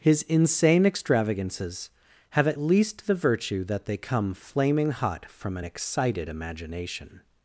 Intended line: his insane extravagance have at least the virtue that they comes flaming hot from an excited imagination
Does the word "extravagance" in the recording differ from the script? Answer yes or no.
yes